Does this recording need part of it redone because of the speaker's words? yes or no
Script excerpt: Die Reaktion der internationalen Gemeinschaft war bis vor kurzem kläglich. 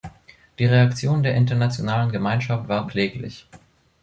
yes